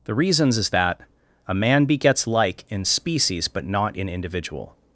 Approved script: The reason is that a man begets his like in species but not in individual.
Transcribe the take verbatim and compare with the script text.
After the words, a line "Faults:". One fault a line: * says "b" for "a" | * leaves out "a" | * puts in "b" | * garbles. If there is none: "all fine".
The reasons is that a man begets like in species but not in individual.
Faults:
* says "reasons" for "reason"
* leaves out "his"